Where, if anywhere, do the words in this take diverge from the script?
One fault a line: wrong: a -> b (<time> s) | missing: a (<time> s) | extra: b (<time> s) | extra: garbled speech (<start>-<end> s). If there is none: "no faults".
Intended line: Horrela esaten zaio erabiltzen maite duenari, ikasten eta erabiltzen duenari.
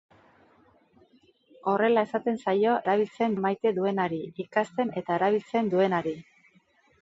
no faults